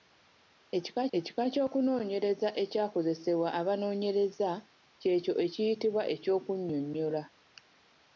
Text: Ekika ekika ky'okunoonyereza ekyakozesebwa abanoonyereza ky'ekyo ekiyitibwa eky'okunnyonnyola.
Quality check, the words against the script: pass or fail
pass